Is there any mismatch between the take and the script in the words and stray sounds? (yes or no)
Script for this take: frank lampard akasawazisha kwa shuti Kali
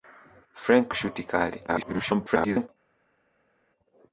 yes